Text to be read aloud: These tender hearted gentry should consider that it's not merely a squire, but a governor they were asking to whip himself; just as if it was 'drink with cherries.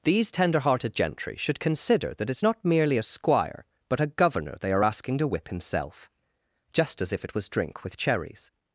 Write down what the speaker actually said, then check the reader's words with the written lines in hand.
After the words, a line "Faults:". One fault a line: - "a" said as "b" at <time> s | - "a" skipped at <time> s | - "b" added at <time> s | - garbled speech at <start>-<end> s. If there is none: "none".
These tender hearted gentry should consider that it's not merely a squire, but a governor they are asking to whip himself; just as if it was 'drink with cherries.
Faults:
- "were" said as "are" at 4.7 s